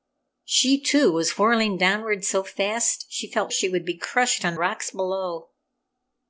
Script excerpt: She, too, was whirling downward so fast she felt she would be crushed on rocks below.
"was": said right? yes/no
yes